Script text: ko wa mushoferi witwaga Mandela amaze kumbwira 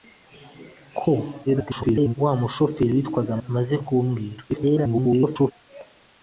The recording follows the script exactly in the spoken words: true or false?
false